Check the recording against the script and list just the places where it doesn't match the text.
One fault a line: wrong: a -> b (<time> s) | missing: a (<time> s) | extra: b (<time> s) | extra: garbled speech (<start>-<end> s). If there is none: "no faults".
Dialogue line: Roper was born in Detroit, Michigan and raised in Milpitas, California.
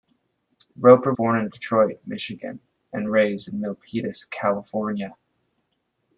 missing: was (1.1 s)